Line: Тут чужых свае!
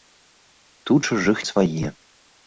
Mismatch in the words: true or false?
false